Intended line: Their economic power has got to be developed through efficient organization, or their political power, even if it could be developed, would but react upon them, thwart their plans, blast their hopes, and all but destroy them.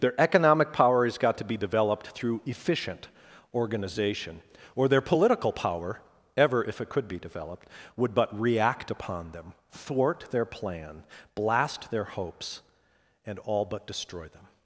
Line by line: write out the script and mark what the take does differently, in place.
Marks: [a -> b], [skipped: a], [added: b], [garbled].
Their economic power has got to be developed through efficient organization, or their political power, [even -> ever] if it could be developed, would but react upon them, thwart their [plans, -> plan] blast their hopes, and all but destroy them.